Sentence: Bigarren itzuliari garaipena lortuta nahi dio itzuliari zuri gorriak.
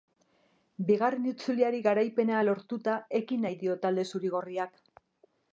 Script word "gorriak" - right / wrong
right